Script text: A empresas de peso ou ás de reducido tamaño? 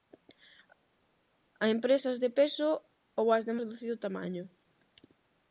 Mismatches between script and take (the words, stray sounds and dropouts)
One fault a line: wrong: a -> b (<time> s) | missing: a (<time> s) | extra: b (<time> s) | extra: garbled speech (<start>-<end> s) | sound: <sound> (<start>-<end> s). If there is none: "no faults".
no faults